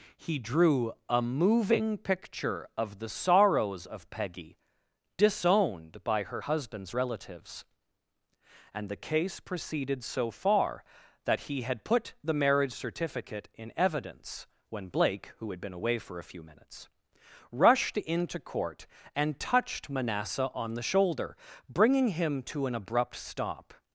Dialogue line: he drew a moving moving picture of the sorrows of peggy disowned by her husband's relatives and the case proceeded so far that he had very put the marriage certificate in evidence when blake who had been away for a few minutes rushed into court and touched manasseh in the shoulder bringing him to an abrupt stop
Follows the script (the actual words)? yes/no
no